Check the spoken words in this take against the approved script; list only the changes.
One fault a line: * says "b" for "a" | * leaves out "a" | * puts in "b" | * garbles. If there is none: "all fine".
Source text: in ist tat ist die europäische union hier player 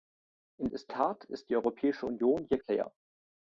all fine